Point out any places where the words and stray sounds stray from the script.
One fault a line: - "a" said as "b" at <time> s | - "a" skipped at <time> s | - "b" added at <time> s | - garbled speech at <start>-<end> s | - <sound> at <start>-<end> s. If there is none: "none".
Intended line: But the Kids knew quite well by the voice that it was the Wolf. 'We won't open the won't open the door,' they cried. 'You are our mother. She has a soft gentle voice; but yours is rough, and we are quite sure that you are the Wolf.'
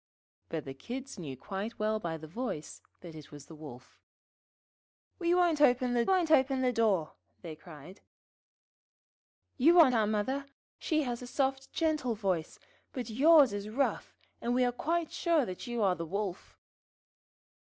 none